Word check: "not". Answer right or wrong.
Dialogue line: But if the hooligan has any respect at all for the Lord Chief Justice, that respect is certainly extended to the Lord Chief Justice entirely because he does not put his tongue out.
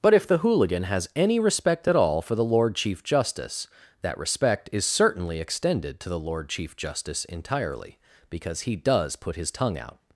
wrong